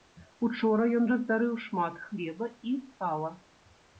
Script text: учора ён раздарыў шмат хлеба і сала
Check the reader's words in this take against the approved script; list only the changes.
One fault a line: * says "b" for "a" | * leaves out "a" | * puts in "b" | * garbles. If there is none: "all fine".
all fine